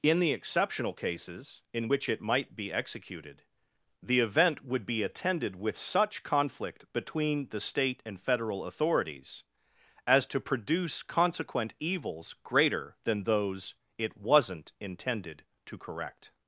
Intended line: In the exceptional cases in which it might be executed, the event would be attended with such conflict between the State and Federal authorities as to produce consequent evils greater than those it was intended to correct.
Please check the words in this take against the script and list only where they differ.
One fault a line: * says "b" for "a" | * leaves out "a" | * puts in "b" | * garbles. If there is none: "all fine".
* says "wasn't" for "was"